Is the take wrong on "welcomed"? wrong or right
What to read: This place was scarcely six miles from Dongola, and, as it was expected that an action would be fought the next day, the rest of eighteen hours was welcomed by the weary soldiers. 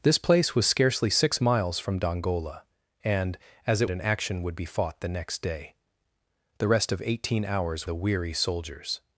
wrong